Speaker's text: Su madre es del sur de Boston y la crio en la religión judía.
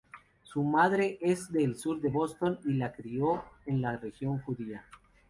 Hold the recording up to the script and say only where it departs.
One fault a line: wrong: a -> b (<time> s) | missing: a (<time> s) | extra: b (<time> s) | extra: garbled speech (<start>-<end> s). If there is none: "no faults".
no faults